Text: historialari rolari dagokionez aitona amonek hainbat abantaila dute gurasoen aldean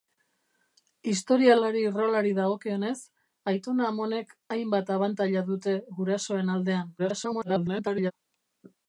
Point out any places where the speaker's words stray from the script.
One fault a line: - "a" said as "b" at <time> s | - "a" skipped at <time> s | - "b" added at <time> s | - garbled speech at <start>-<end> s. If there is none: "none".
- garbled speech at 7.0-8.1 s